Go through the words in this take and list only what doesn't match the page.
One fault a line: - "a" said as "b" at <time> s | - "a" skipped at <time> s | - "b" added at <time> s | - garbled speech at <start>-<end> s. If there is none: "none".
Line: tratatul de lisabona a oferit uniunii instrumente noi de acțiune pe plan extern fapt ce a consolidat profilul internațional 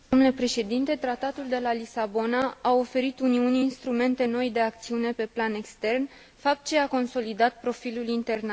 - "la" added at 1.6 s